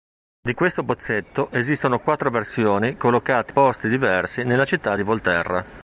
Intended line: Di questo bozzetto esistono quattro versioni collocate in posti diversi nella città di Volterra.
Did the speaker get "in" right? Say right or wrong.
wrong